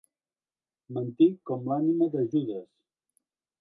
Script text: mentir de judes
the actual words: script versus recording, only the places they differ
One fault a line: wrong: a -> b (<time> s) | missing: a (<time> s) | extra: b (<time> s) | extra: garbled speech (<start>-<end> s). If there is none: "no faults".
extra: com l'ànima (1.5 s)